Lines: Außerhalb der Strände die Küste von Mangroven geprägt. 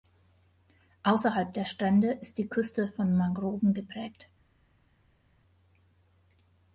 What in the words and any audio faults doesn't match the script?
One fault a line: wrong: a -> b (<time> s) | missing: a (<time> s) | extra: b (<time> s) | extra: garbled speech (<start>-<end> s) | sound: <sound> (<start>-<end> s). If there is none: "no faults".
extra: ist (2.1 s)